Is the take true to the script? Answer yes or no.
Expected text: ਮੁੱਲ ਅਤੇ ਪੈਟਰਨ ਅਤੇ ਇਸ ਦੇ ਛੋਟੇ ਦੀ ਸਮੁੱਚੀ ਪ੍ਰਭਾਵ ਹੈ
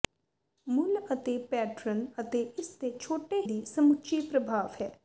yes